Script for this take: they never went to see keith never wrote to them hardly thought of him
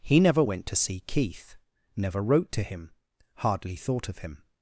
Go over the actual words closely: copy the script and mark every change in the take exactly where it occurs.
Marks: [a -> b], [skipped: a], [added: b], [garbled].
[they -> he] never went to see keith never wrote to [them -> him] hardly thought of him